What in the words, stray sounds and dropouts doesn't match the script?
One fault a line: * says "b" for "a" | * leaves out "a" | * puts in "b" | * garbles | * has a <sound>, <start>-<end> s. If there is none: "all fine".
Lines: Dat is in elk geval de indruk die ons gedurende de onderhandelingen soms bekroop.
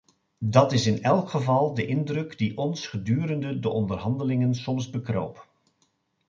all fine